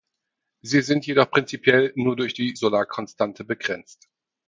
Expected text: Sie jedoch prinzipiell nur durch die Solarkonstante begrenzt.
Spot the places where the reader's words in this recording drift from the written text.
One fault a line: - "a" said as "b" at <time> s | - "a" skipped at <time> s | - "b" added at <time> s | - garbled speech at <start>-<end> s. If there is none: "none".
- "sind" added at 0.8 s